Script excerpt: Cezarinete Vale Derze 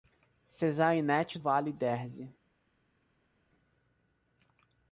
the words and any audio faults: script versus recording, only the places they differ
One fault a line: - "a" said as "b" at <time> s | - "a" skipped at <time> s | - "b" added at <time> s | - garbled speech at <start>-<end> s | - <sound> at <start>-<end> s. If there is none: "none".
none